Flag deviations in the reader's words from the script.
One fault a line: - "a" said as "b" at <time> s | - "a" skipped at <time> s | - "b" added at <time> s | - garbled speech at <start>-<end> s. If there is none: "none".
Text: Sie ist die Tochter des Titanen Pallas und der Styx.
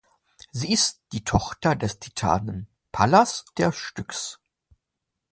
- "und" skipped at 3.5 s